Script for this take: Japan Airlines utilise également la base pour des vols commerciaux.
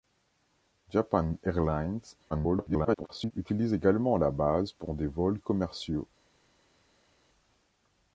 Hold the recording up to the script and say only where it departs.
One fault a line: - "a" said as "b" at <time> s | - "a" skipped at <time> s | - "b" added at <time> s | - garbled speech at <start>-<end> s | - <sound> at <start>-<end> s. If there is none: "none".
- garbled speech at 2.3-3.3 s